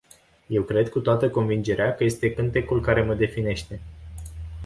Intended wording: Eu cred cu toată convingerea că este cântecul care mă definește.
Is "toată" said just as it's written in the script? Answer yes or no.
yes